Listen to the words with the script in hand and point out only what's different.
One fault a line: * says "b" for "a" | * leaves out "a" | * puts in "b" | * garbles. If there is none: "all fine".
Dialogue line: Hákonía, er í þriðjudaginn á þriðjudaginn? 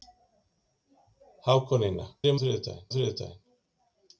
all fine